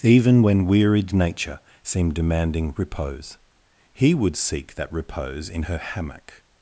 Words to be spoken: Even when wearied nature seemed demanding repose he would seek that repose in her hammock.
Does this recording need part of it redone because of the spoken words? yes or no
no